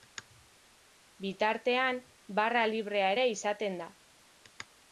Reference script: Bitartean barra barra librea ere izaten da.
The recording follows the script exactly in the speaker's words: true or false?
false